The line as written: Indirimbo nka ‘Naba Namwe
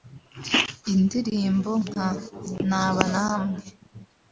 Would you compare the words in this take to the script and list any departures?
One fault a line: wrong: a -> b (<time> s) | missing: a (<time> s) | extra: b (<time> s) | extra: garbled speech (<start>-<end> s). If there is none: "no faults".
no faults